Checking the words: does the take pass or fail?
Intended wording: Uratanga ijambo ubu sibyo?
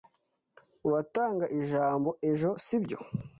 fail